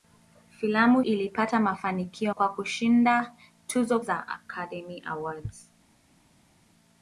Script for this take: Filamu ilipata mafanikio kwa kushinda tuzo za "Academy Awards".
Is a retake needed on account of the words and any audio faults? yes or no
no